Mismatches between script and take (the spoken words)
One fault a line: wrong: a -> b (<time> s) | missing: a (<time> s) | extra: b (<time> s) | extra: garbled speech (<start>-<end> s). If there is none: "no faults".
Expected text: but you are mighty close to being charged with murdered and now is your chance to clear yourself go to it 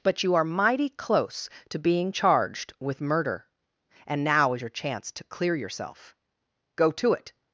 wrong: murdered -> murder (3.0 s)